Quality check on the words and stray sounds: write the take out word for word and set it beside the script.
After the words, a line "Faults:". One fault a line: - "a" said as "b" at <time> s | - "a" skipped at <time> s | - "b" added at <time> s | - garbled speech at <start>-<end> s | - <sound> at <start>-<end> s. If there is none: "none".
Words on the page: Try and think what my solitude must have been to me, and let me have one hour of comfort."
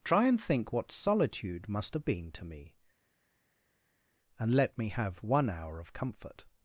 Try and think what solitude must have been to me, and let me have one hour of comfort."
Faults:
- "my" skipped at 0.9 s